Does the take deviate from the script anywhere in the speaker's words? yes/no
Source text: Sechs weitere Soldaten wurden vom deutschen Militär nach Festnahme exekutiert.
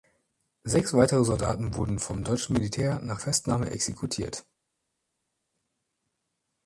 no